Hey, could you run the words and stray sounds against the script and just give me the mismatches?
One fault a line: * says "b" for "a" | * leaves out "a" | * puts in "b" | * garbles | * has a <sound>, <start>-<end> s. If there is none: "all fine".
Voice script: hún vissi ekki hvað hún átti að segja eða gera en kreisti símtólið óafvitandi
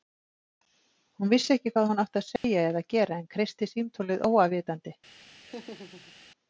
* has a dropout, 2.4-2.4 s
* has a laugh, 5.4-6.1 s